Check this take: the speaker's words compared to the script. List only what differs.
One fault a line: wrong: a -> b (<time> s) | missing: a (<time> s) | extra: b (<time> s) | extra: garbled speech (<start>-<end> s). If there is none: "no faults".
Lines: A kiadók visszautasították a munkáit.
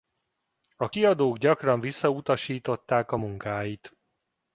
extra: gyakran (1.4 s)